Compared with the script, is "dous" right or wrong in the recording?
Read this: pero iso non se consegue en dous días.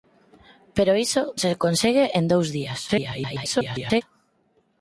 right